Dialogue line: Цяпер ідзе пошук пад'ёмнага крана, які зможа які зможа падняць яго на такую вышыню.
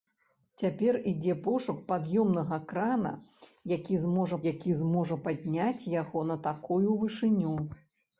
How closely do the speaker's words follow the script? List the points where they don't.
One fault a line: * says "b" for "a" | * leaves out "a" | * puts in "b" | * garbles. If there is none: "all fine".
all fine